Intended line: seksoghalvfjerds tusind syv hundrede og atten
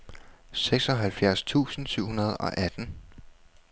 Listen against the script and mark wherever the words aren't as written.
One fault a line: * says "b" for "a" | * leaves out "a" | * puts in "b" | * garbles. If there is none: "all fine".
all fine